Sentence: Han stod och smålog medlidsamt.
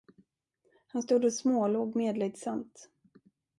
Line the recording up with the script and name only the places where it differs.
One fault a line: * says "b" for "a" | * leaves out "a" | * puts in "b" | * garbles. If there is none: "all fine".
all fine